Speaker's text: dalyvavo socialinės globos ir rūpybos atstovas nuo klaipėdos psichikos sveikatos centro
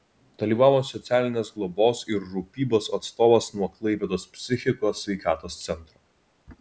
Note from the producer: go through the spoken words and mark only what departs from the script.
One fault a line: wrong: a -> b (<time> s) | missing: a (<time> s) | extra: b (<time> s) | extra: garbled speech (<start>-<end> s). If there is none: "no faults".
no faults